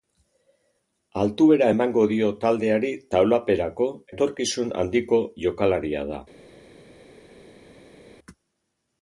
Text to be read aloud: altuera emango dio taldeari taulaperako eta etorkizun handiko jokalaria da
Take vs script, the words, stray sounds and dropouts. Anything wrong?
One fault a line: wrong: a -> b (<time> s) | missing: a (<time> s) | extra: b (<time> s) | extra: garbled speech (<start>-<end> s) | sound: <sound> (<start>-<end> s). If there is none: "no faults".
missing: eta (3.9 s)